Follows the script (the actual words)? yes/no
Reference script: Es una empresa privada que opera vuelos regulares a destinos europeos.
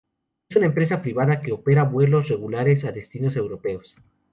yes